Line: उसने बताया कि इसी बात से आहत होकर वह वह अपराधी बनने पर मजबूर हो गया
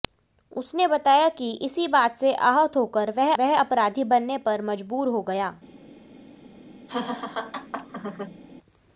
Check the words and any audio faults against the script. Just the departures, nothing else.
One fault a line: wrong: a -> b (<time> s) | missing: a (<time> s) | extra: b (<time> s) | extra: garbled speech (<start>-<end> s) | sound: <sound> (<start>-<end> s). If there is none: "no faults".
sound: laugh (6.9-8.4 s)